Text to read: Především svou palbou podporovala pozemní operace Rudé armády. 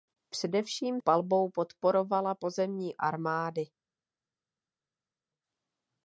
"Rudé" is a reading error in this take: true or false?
true